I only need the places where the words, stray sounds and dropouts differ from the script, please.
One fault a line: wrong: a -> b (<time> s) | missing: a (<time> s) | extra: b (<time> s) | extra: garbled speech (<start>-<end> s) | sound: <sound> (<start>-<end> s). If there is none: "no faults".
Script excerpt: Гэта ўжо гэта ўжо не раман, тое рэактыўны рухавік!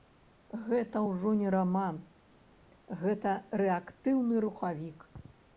missing: гэта ўжо (1.3 s)
wrong: тое -> гэта (3.0 s)